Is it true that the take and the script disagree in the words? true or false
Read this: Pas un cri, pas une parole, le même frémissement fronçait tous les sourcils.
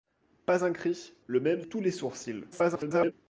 true